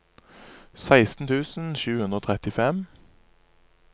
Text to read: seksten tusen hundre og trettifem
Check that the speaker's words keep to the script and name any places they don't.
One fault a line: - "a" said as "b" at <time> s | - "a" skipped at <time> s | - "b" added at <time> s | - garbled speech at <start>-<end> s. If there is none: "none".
- "sju" added at 1.8 s